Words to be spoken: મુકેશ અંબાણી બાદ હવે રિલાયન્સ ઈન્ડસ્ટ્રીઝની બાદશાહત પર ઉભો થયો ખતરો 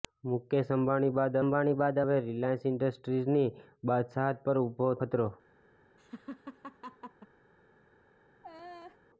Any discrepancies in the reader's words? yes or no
yes